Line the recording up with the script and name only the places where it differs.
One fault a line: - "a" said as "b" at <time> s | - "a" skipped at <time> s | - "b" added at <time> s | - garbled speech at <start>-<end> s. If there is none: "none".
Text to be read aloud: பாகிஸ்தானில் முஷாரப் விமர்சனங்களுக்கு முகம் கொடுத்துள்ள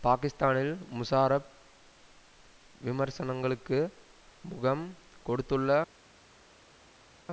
none